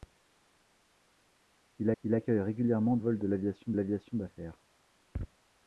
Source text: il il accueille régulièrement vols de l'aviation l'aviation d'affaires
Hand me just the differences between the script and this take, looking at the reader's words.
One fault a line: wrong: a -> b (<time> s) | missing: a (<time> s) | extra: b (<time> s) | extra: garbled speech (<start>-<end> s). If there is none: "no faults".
no faults